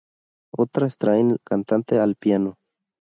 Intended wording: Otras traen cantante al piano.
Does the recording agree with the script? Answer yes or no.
yes